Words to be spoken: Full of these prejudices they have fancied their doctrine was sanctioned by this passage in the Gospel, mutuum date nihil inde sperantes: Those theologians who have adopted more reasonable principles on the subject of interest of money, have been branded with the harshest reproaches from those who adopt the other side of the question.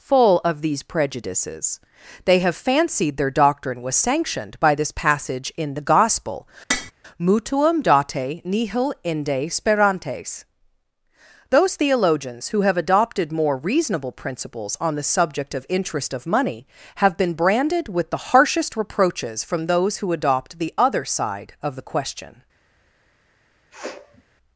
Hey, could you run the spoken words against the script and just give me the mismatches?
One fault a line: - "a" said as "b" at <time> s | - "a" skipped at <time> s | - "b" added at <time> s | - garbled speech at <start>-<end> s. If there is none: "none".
none